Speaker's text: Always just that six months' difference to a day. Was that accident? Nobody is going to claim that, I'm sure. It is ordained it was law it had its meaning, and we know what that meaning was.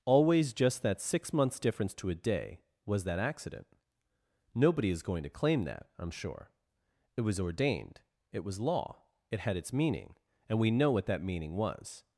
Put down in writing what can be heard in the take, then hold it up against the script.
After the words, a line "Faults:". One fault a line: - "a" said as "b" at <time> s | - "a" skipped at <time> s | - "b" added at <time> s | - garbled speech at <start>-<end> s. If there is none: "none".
Always just that six months' difference to a day. Was that accident? Nobody is going to claim that, I'm sure. It was ordained it was law it had its meaning, and we know what that meaning was.
Faults:
- "is" said as "was" at 7.2 s